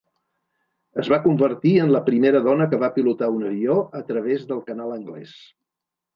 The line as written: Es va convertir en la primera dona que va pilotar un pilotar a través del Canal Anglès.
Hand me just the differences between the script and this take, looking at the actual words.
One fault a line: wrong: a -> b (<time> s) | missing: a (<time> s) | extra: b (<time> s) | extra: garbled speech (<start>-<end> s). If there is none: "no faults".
wrong: pilotar -> avió (3.5 s)